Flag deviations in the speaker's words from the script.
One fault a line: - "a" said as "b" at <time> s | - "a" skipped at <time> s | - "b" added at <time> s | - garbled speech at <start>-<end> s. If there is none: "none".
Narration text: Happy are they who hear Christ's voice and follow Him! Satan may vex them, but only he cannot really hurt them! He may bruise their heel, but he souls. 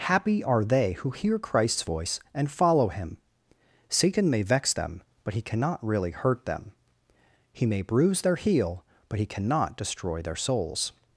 - "only" skipped at 5.3 s
- "cannot destroy their" added at 9.3 s